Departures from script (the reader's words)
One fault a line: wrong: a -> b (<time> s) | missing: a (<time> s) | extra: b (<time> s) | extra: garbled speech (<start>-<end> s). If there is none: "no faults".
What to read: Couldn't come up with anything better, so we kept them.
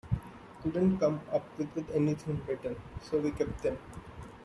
extra: with (1.8 s)